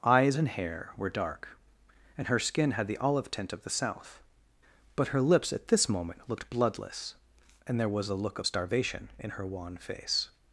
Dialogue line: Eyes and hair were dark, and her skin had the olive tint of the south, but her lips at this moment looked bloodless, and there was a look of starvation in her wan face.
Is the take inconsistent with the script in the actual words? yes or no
no